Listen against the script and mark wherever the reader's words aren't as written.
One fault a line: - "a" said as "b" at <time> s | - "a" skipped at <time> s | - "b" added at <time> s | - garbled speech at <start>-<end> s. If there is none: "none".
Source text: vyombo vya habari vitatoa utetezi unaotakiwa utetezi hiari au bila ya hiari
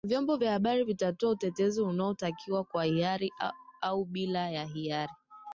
- "utetezi" said as "kwa" at 2.6 s